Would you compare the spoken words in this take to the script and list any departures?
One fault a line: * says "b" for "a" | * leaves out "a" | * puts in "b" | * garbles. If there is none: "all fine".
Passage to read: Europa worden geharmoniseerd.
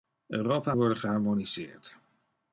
all fine